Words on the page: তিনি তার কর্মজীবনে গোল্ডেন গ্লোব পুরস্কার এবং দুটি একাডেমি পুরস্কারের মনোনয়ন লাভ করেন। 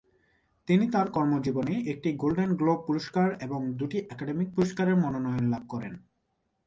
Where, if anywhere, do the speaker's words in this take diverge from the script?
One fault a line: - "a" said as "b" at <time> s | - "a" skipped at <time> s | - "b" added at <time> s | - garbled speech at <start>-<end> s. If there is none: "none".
- "একটি" added at 1.9 s